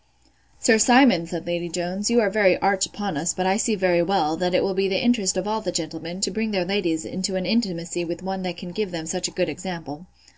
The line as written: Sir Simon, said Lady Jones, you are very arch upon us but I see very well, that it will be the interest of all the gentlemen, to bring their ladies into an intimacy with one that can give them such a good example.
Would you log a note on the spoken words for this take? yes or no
no